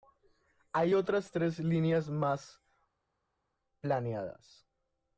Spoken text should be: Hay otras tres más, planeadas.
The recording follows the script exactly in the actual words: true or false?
false